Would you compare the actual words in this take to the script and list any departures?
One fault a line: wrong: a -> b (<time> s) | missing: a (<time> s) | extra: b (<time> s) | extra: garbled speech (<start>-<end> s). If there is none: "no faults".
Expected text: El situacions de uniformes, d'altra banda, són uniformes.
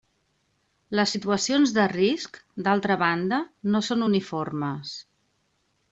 wrong: El -> Les (1.0 s)
wrong: uniformes -> risc (1.9 s)
extra: no (3.7 s)